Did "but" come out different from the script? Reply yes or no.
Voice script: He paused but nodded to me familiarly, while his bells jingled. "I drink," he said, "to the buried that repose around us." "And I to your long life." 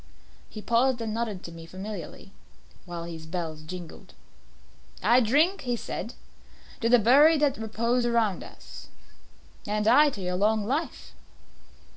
yes